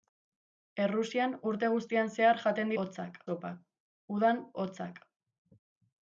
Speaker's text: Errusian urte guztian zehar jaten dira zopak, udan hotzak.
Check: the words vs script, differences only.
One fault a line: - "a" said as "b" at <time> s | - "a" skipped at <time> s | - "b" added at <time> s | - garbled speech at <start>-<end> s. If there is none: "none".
- "dira" said as "hotzak" at 2.8 s